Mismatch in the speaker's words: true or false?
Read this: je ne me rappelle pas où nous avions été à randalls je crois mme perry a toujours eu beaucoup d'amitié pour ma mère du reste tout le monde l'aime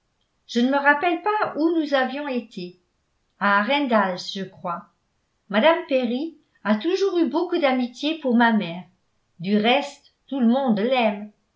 false